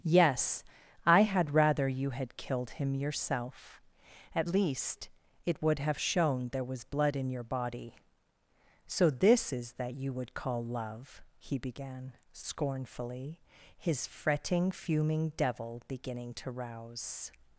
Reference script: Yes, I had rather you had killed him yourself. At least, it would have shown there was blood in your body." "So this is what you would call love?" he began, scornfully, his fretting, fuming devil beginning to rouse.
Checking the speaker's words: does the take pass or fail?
fail